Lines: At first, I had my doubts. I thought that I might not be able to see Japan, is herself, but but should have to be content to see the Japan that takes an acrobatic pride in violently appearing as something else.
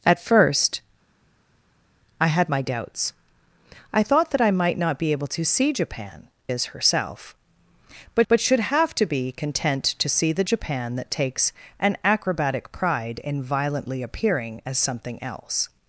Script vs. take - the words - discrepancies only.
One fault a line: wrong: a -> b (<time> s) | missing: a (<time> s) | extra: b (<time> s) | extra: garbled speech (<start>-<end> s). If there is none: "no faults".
no faults